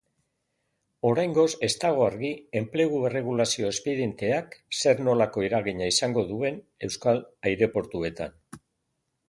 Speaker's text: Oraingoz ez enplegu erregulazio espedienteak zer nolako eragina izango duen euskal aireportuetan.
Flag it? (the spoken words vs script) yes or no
yes